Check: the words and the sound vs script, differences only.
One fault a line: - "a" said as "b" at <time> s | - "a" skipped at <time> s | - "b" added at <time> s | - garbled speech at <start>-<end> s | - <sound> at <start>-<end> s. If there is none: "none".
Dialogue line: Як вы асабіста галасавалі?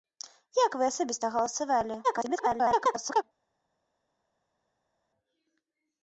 - garbled speech at 2.0-3.2 s